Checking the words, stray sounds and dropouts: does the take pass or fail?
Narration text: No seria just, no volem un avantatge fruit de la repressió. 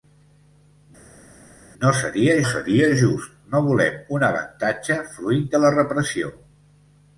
fail